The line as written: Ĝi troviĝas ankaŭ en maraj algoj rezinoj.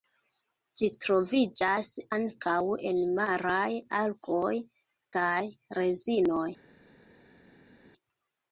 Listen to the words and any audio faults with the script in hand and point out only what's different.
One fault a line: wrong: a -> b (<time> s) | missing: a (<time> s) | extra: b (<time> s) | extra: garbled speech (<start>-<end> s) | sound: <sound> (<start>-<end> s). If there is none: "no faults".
extra: kaj (5.2 s)